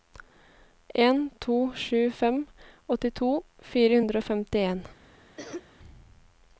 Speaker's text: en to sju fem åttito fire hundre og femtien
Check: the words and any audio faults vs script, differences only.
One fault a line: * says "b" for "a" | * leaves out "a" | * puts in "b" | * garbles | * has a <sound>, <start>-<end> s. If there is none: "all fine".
* has a cough, 5.4-5.7 s